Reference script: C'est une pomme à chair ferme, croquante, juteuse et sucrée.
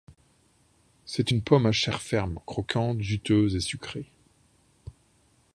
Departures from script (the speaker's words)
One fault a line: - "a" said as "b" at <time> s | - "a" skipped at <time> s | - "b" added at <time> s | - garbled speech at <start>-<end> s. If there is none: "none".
none